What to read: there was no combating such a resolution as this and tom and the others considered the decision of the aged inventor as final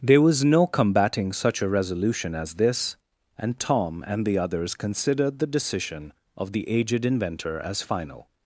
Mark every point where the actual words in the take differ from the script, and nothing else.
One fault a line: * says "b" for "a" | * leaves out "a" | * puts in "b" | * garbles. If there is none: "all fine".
all fine